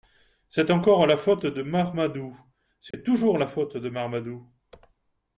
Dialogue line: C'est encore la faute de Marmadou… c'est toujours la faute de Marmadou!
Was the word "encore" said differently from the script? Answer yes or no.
no